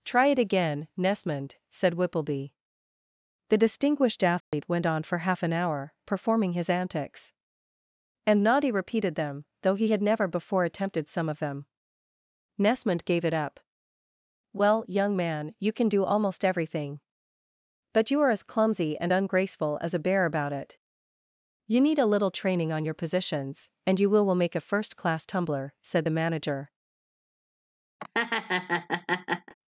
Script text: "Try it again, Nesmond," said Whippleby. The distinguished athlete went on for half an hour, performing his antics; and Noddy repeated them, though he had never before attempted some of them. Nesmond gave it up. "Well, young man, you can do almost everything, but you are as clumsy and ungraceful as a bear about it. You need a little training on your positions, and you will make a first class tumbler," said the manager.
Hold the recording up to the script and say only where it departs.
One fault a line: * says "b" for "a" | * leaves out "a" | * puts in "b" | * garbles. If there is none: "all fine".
* puts in "will"